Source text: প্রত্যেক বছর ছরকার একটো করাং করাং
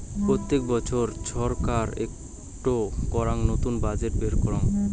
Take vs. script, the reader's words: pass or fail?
fail